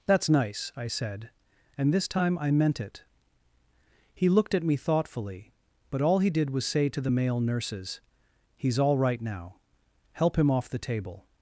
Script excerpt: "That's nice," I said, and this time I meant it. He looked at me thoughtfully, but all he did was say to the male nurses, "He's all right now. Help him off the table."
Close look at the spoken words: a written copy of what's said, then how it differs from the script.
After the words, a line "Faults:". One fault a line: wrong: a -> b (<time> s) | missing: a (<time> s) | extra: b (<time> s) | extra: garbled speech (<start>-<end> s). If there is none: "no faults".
"That's nice," I said, and this time I meant it. He looked at me thoughtfully, but all he did was say to the male nurses, "He's all right now. Help him off the table."
Faults:
no faults